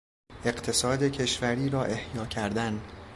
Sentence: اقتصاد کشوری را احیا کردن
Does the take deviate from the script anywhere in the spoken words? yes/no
no